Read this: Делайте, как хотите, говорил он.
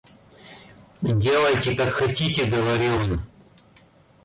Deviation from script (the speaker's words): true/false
false